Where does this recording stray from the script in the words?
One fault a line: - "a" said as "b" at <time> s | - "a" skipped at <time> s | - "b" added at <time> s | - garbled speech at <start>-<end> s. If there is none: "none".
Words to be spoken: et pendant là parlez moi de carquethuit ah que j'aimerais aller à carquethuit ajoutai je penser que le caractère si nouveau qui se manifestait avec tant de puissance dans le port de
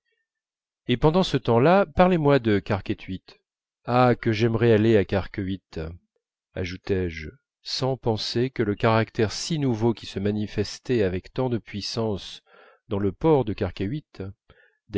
- "ce temps" added at 1.2 s
- "sans" added at 7.6 s